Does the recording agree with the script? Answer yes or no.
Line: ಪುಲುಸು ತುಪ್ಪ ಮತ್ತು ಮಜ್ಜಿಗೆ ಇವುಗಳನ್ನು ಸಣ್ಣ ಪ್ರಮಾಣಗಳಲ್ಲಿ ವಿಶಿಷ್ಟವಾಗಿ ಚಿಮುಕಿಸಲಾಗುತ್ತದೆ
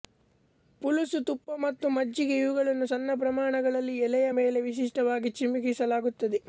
no